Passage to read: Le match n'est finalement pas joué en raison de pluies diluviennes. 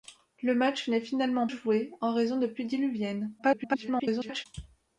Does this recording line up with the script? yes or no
no